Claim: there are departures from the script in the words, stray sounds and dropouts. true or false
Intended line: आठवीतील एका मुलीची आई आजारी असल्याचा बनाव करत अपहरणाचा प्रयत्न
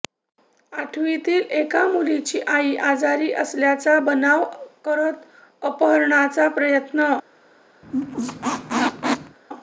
true